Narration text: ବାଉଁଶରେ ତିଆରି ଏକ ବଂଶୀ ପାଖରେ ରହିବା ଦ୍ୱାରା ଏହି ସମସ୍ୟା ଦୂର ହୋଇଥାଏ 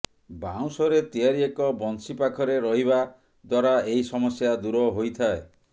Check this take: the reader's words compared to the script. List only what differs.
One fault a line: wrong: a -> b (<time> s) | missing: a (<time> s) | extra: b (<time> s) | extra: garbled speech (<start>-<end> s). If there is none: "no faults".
no faults